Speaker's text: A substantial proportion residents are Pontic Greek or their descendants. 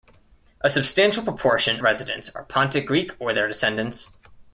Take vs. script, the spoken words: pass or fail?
pass